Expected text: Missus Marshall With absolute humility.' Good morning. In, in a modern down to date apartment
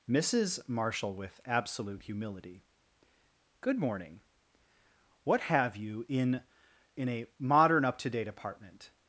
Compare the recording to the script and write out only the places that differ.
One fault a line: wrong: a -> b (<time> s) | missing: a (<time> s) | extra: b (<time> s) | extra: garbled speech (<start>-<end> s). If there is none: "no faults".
extra: What have you (5.2 s)
wrong: down -> up (7.8 s)